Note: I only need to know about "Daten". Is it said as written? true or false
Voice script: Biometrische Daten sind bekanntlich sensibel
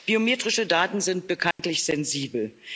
true